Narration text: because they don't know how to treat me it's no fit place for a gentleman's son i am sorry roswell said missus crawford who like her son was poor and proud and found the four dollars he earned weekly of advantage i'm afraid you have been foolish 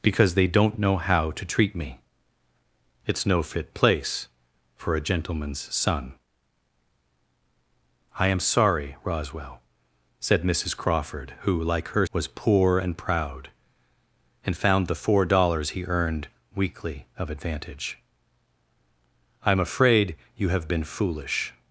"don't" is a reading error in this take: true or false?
false